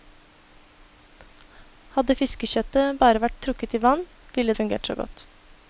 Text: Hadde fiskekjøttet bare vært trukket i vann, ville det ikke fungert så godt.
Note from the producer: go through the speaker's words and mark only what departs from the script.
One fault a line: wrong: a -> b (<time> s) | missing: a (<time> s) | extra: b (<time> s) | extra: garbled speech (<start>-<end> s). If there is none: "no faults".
missing: det ikke (4.5 s)